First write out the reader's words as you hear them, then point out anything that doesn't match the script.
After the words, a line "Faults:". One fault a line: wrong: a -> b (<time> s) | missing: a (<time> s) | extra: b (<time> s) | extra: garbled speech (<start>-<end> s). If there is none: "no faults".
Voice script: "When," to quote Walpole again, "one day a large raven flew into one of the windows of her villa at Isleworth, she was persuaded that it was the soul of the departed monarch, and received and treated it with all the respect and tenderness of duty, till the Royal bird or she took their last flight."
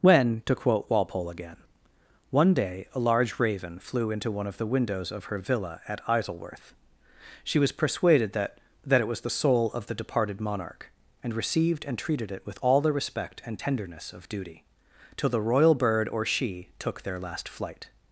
"When," to quote Walpole again, "one day a large raven flew into one of the windows of her villa at Isleworth, she was persuaded that that it was the soul of the departed monarch, and received and treated it with all the respect and tenderness of duty, till the Royal bird or she took their last flight."
Faults:
extra: that (8.8 s)